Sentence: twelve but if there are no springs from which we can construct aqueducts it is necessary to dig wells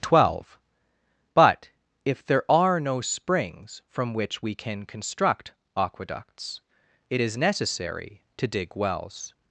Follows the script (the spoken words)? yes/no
yes